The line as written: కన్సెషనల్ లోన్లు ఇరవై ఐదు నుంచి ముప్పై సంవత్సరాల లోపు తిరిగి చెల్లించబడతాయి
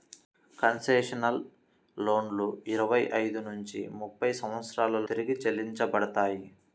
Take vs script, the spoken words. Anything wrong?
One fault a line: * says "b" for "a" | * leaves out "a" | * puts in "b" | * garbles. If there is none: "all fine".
* leaves out "లోపు"